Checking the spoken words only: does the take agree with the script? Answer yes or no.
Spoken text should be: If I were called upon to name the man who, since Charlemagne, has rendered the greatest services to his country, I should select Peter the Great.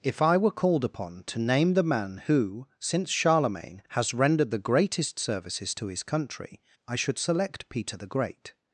yes